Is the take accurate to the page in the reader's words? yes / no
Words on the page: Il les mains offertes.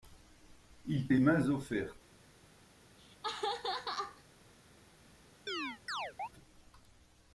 yes